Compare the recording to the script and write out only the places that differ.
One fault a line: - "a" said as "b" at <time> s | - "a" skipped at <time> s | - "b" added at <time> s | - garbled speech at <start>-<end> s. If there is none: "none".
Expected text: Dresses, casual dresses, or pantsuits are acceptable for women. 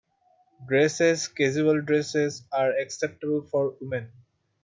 - "or pantsuits" skipped at 2.5 s